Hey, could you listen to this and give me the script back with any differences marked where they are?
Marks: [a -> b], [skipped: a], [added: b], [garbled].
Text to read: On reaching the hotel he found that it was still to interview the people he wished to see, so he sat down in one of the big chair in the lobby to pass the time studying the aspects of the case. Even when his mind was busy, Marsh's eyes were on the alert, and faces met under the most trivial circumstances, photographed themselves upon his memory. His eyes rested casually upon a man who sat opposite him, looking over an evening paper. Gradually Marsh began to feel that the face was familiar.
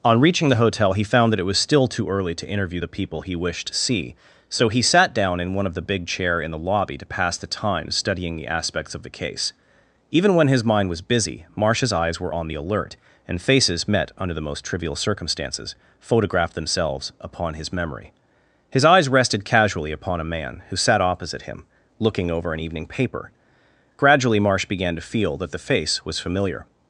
On reaching the hotel he found that it was still [added: too early] to interview the people he wished to see, so he sat down in one of the big chair in the lobby to pass the time studying the aspects of the case. Even when his mind was busy, Marsh's eyes were on the alert, and faces met under the most trivial circumstances, photographed themselves upon his memory. His eyes rested casually upon a man who sat opposite him, looking over an evening paper. Gradually Marsh began to feel that the face was familiar.